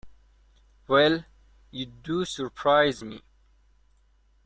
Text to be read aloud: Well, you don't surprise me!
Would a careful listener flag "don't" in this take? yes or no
yes